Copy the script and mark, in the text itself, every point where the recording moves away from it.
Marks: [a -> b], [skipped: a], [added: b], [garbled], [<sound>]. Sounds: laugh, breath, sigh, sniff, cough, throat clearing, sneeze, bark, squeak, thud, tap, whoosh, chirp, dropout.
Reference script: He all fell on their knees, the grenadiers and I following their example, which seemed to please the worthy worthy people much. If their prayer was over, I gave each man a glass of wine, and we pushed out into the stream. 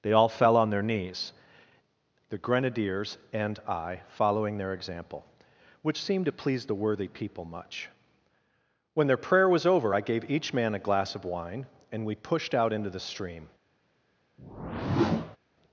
[He -> They] all fell on their knees, the grenadiers and I following their example, which seemed to please the worthy [skipped: worthy] people much. [If -> When] their prayer was over, I gave each man a glass of wine, and we pushed out into the stream. [whoosh]